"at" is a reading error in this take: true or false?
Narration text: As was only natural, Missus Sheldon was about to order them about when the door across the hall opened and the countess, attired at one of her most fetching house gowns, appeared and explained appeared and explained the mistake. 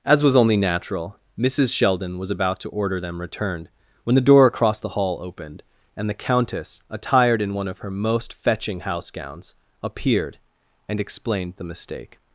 true